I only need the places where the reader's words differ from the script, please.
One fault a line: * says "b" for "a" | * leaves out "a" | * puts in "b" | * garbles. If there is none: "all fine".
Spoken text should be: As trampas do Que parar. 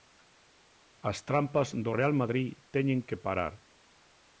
* puts in "Real Madrid teñen"